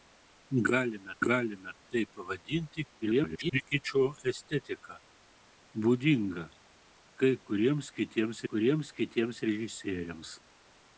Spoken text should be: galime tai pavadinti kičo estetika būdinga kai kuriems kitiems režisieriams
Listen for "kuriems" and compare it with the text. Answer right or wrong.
right